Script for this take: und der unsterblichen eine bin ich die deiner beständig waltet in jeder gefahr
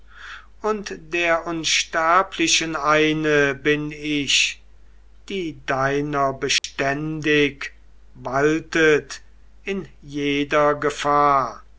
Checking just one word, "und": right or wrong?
right